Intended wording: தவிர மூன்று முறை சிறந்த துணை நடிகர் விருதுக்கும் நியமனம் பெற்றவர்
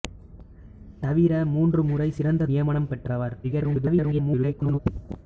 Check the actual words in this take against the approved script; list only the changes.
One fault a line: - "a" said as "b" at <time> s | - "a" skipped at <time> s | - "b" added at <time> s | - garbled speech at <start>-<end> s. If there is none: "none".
- "துணை நடிகர் விருதுக்கும்" skipped at 2.5 s
- garbled speech at 3.4-4.8 s